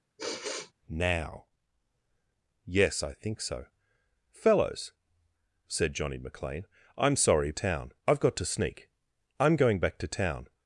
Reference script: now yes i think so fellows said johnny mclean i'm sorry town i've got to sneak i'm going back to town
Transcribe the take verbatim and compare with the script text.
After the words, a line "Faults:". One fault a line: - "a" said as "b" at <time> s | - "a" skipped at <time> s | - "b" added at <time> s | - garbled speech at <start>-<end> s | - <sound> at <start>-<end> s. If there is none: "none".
now yes i think so fellows said johnny mclean i'm sorry town i've got to sneak i'm going back to town
Faults:
- sigh at 0.2-0.7 s